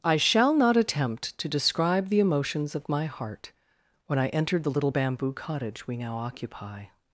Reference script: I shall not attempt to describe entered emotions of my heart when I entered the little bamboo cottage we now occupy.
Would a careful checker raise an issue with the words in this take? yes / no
yes